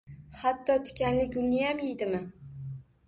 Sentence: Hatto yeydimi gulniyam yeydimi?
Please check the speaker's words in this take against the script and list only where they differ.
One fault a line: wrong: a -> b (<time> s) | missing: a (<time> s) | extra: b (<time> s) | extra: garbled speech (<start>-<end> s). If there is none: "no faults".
wrong: yeydimi -> tikanli (0.9 s)